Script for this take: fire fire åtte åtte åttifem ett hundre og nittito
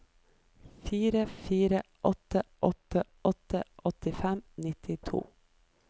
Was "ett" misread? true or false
true